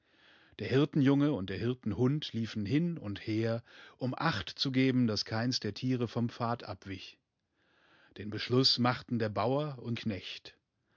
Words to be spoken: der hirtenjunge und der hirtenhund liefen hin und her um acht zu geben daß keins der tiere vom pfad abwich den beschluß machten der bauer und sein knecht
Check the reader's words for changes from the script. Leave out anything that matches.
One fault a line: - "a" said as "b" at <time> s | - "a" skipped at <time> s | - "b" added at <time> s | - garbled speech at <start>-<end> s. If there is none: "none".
- "sein" skipped at 10.0 s